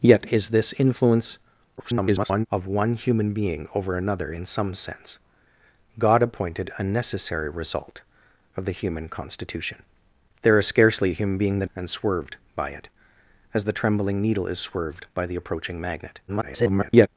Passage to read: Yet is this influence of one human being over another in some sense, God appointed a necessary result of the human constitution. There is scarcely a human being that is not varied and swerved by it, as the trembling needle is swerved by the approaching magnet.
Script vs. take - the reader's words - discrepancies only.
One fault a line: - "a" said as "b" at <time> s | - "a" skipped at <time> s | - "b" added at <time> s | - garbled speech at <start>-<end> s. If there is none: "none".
- garbled speech at 1.8-2.5 s
- "is not varied" skipped at 11.7 s
- garbled speech at 16.3-17.1 s